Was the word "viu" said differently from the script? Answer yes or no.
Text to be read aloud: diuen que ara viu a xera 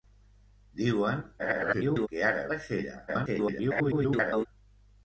yes